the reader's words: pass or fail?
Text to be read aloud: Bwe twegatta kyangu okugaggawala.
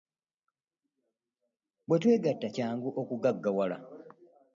pass